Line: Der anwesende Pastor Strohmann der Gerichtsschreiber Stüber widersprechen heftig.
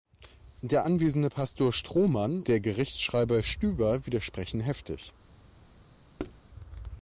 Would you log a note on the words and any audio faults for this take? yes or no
yes